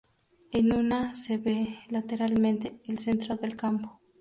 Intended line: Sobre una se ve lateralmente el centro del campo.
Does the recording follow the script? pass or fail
fail